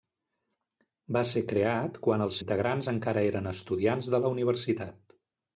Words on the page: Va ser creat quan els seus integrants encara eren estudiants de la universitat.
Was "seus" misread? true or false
true